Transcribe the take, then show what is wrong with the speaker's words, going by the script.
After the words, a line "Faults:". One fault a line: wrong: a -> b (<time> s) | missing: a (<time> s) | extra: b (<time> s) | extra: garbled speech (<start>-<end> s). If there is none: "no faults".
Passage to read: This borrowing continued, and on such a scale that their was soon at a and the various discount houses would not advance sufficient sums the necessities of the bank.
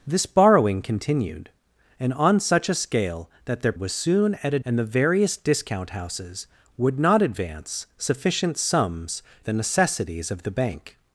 This borrowing continued, and on such a scale that their was soon at a and the various discount houses would not advance sufficient sums the necessities of the bank.
Faults:
no faults